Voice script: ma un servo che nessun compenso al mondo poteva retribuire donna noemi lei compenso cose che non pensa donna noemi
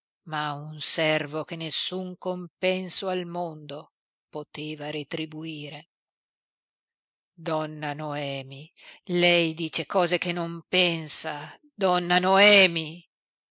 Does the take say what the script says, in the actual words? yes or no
no